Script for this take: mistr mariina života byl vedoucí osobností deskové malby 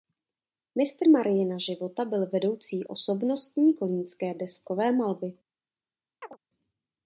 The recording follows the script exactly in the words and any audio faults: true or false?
false